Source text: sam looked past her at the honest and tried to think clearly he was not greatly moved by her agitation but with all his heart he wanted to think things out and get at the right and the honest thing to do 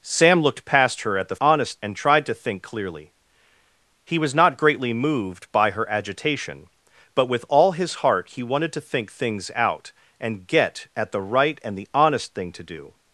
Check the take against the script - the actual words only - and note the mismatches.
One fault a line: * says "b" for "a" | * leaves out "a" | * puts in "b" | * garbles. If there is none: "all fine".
all fine